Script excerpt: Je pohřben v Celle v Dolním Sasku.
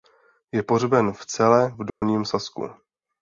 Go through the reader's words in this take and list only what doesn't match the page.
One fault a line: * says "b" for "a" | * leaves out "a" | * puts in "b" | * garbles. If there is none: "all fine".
all fine